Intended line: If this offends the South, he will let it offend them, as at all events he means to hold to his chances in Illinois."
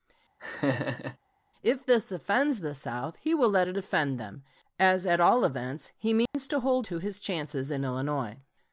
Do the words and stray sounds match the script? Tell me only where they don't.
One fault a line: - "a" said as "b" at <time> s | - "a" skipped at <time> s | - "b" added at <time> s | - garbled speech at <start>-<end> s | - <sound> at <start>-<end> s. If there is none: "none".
- laugh at 0.4-1.2 s
- dropout at 6.3-6.3 s